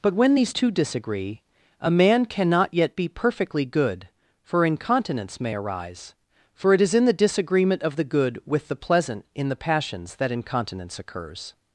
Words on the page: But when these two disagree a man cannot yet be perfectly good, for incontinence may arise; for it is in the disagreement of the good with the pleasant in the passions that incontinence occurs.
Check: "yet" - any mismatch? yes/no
no